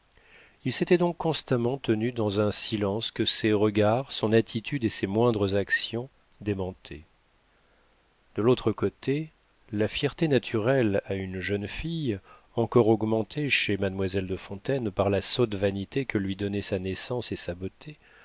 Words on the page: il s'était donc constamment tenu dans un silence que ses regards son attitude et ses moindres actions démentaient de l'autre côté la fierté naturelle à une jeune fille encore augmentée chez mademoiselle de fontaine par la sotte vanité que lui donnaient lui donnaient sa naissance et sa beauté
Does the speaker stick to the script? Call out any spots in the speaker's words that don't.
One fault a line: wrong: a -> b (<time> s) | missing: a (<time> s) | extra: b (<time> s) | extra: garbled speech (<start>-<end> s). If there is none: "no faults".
missing: lui donnaient (16.6 s)